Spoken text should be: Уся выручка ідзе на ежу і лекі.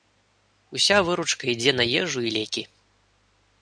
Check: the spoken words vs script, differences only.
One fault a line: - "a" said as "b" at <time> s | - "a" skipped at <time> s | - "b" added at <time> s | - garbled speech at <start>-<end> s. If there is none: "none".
none